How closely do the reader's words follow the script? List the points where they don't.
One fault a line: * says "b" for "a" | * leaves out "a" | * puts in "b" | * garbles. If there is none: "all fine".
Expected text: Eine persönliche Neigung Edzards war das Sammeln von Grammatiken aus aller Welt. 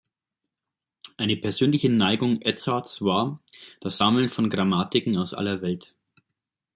all fine